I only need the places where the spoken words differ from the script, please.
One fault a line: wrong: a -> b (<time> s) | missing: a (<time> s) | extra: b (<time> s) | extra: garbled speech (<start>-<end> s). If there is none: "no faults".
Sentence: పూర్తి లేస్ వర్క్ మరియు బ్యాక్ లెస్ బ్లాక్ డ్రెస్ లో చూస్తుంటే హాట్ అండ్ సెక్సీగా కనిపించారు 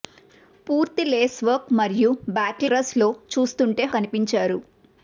missing: లెస్ బ్లాక్ (2.6 s)
missing: హాట్ అండ్ సెక్సీగా (3.8 s)